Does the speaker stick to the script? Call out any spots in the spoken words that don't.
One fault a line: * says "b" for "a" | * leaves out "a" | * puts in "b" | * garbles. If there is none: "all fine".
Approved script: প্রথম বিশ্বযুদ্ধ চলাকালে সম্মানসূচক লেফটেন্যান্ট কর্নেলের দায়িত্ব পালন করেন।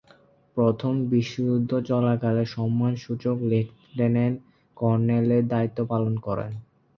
all fine